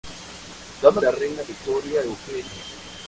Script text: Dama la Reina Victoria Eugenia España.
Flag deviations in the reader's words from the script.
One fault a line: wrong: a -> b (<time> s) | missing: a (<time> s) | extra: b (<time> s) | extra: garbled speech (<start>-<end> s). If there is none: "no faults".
no faults